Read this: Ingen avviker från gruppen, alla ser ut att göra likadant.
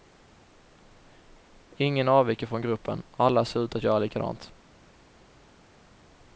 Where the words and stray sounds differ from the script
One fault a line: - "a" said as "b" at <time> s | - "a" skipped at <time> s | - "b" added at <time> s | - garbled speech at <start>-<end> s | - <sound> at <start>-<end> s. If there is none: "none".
none